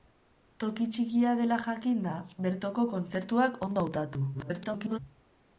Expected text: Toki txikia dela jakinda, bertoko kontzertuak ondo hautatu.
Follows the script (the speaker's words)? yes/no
no